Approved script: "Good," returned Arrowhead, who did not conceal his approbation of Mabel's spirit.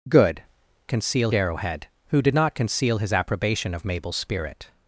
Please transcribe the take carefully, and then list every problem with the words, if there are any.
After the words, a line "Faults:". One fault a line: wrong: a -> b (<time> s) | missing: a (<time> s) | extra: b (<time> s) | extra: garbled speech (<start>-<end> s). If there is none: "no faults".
"Good," conceal Arrowhead, who did not conceal his approbation of Mabel's spirit.
Faults:
wrong: returned -> conceal (0.9 s)